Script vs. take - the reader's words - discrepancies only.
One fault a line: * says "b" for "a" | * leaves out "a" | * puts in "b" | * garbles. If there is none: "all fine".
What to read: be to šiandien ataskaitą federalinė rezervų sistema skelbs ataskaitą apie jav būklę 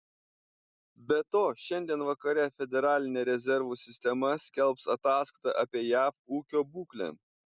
* says "vakare" for "ataskaitą"
* puts in "ūkio"